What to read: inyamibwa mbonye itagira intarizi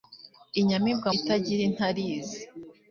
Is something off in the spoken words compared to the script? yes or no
yes